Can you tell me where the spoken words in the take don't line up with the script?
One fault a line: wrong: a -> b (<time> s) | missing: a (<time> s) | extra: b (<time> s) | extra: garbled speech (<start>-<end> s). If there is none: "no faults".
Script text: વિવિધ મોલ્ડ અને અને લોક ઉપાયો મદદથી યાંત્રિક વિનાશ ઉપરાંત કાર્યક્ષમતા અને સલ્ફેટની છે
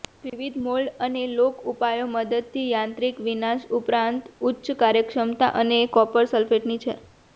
missing: અને (1.2 s)
extra: ઉચ્ચ (4.5 s)
extra: કોપર (5.9 s)